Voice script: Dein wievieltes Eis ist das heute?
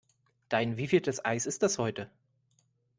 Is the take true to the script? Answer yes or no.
yes